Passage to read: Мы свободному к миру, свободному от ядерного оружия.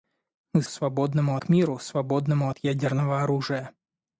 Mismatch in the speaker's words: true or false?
false